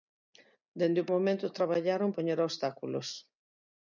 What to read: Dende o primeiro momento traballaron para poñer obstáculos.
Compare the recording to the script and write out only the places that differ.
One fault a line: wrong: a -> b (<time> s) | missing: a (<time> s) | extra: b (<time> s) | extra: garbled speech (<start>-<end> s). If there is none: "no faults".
missing: primeiro (1.1 s)
missing: para (2.1 s)